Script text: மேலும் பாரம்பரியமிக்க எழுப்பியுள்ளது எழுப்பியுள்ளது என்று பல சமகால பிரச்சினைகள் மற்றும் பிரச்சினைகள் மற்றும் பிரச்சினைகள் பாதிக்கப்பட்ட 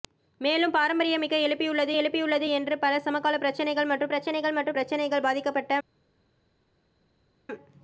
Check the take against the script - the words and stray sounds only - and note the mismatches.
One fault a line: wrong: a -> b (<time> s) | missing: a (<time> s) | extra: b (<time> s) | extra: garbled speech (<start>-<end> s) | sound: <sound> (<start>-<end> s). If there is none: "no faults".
no faults